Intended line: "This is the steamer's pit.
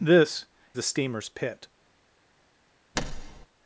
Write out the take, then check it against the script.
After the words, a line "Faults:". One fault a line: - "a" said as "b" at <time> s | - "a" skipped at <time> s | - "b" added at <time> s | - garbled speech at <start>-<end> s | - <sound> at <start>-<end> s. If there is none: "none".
"This the steamer's pit.
Faults:
- "is" skipped at 0.5 s
- thud at 2.9-3.5 s